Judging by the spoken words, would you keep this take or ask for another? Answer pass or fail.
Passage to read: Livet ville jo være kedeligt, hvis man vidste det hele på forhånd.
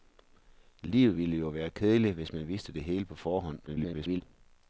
fail